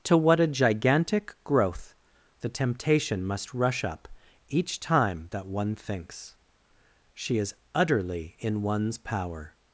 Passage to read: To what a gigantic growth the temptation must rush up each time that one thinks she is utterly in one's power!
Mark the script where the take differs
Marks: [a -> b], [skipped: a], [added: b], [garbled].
To what a gigantic growth the temptation must rush up each time that one thinks she is utterly in one's power!